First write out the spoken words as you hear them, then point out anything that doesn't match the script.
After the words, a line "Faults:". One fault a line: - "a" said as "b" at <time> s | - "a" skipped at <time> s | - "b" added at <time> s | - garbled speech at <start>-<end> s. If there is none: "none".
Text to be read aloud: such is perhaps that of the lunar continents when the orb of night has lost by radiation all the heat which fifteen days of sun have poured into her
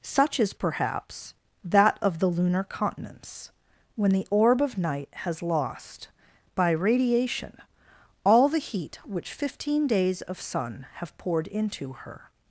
such is perhaps that of the lunar continents when the orb of night has lost by radiation all the heat which fifteen days of sun have poured into her
Faults:
none